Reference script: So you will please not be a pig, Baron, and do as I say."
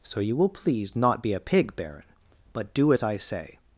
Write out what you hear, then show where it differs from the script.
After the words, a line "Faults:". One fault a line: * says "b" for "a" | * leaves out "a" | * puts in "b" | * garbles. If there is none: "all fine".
So you will please not be a pig, Baron, but do as I say."
Faults:
* says "but" for "and"